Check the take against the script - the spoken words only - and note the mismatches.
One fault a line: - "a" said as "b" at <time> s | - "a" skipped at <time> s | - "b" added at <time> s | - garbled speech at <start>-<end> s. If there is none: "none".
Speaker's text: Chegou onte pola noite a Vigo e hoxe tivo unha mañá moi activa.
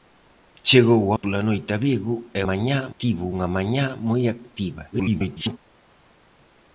- "onte" skipped at 1.0 s
- "hoxe" said as "mañá" at 2.5 s
- garbled speech at 4.9-5.6 s